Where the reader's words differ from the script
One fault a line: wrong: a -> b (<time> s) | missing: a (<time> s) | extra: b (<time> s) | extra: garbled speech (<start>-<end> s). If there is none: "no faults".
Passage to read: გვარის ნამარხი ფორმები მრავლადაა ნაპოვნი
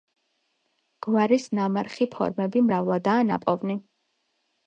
no faults